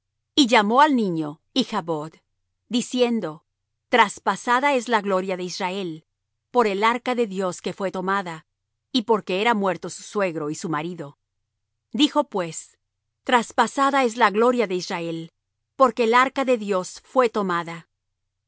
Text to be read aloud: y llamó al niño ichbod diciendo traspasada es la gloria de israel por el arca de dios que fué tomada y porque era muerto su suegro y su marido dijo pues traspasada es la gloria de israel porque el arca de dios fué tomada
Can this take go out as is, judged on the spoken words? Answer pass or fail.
pass